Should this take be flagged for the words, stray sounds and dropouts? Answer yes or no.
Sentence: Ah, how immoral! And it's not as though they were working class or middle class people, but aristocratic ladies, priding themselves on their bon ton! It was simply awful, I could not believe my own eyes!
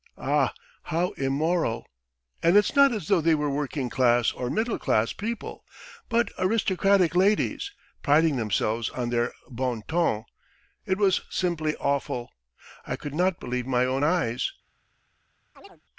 yes